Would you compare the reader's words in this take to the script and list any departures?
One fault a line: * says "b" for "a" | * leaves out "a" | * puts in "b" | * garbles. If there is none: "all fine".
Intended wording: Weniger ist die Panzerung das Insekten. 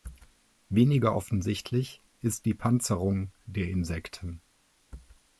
* puts in "offensichtlich"
* says "der" for "das"